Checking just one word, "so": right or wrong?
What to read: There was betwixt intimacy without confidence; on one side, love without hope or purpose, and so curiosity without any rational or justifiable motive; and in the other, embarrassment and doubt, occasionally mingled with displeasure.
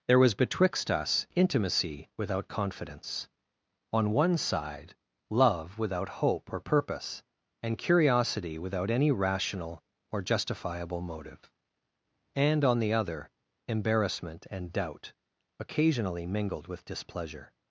wrong